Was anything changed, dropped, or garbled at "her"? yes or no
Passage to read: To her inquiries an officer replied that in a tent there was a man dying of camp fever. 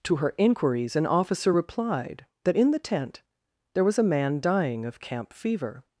no